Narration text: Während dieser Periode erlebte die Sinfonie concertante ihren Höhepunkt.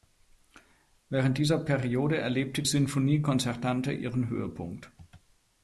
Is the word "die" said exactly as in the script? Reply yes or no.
no